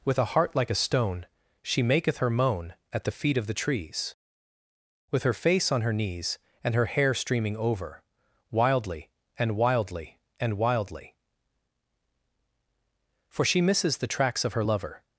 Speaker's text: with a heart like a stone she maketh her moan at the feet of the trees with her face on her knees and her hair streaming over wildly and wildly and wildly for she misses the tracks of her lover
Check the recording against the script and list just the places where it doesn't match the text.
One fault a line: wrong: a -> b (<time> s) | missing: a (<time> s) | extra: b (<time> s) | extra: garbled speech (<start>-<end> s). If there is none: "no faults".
no faults